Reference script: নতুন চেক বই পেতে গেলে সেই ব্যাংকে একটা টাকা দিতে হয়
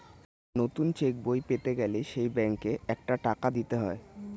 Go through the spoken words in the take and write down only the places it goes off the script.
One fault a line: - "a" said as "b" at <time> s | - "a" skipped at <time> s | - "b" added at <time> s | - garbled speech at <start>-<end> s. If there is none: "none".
none